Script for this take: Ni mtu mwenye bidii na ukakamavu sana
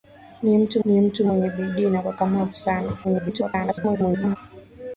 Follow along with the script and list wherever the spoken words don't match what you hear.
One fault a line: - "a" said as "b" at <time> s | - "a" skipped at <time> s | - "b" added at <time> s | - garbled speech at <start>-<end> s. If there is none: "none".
- "ni mtu" added at 0.9 s
- garbled speech at 3.0-4.4 s